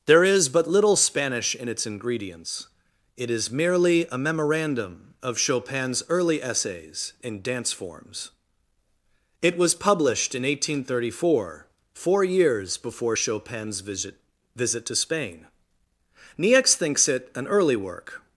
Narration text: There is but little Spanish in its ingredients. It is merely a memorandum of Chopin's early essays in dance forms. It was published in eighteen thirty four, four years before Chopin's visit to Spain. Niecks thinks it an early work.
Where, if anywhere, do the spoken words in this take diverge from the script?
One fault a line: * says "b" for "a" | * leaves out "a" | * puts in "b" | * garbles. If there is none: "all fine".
* puts in "visit"